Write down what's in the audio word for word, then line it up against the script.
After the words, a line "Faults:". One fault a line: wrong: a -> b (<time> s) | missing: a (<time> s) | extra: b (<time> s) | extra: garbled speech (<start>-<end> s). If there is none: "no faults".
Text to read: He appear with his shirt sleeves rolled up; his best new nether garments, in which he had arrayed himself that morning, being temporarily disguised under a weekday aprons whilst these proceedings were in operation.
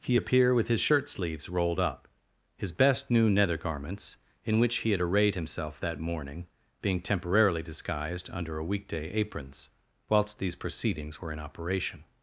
He appear with his shirt sleeves rolled up; his best new nether garments, in which he had arrayed himself that morning, being temporarily disguised under a weekday aprons whilst these proceedings were in operation.
Faults:
no faults